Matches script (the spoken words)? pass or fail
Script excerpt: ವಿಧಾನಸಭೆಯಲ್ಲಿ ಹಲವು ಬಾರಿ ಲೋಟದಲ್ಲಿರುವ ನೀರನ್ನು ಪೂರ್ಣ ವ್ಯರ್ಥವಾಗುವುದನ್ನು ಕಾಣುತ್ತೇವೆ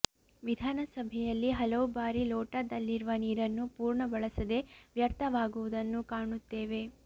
fail